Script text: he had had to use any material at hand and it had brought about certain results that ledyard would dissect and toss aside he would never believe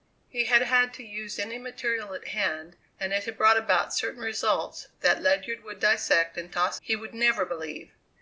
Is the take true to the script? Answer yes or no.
no